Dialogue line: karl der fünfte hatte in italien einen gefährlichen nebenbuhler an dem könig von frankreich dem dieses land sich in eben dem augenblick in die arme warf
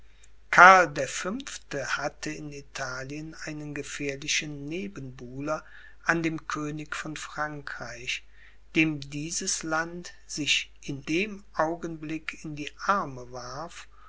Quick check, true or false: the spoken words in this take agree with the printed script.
false